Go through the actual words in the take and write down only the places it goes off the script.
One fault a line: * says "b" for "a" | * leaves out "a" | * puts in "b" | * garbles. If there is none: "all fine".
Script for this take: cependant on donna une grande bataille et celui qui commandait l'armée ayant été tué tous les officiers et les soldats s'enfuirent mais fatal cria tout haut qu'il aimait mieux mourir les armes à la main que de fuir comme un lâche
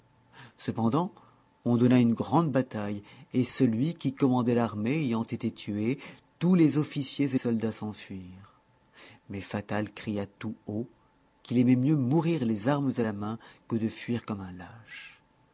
* leaves out "les"